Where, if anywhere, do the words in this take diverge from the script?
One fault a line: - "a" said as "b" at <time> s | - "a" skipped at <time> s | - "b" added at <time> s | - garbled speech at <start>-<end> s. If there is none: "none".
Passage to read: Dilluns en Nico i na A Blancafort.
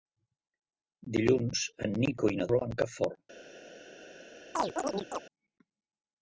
none